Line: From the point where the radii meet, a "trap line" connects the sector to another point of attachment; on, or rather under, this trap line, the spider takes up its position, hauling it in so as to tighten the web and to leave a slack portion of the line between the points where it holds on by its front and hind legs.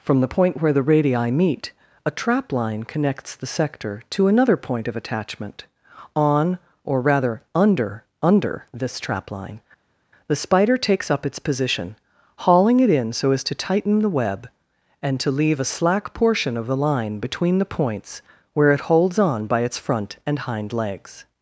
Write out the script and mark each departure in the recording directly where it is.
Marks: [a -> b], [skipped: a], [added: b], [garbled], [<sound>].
From the point where the radii meet, a "trap line" connects the sector to another point of attachment; on, or rather under, [added: under] this trap line, the spider takes up its position, hauling it in so as to tighten the web and to leave a slack portion of the line between the points where it holds on by its front and hind legs.